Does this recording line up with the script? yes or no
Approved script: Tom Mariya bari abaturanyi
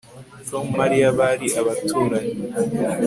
yes